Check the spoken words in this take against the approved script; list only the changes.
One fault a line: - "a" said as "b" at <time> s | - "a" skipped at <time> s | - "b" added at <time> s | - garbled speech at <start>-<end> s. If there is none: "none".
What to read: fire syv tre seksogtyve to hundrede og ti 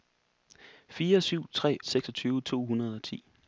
none